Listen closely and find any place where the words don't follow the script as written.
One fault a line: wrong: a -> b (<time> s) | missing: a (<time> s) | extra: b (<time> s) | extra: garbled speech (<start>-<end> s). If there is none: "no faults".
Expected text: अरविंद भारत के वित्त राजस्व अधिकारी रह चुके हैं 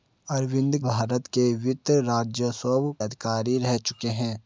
no faults